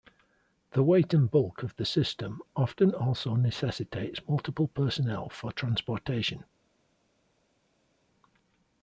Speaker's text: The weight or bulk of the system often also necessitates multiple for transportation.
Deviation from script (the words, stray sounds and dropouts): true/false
true